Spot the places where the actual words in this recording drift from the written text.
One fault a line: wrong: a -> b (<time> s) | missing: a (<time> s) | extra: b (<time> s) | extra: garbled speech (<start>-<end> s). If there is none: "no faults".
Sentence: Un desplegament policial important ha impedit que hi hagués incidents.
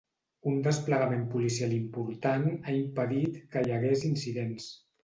no faults